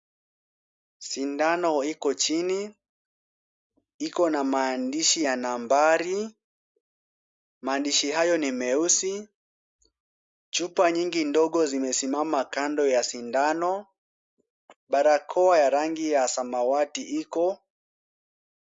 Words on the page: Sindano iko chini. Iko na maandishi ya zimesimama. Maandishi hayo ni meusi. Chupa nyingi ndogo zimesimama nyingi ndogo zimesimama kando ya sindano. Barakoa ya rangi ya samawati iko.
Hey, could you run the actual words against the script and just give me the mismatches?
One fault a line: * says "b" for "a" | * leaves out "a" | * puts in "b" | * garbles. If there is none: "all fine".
* says "nambari" for "zimesimama"
* leaves out "nyingi ndogo zimesimama"